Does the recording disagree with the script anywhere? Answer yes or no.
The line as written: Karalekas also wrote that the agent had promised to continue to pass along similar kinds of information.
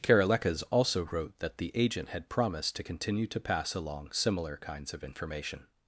no